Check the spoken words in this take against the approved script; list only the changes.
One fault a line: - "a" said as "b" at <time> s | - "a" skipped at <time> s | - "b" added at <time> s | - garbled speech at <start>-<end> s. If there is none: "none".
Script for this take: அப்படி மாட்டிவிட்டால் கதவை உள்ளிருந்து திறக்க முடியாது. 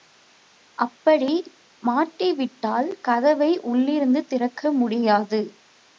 none